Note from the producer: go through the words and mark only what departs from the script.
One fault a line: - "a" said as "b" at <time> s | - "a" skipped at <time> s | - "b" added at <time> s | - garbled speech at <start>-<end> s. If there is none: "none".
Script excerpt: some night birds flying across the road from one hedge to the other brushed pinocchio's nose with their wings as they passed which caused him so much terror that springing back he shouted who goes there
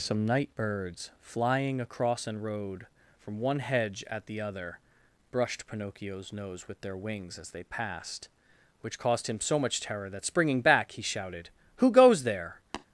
- "the" said as "an" at 2.2 s
- "to" said as "at" at 4.1 s